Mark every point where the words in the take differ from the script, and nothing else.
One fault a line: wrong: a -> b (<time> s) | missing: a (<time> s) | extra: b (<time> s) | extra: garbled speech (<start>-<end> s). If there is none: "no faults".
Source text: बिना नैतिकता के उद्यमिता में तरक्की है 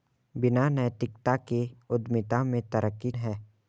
no faults